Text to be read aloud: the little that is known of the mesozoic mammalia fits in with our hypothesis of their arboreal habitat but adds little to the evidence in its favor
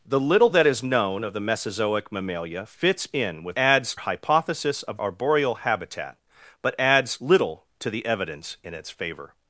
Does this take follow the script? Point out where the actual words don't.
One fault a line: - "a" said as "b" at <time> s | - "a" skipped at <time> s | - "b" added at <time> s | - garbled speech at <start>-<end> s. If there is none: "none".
- "our" said as "adds" at 3.6 s
- "their" skipped at 5.0 s